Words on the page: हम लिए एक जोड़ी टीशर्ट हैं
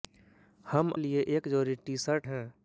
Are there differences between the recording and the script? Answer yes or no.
no